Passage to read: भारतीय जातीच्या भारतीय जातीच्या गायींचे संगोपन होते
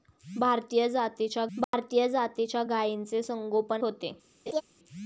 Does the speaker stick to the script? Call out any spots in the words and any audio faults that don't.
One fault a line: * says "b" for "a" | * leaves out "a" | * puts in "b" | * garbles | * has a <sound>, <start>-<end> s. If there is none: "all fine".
* has a dropout, 1.6-1.7 s
* has a laugh, 4.5-4.6 s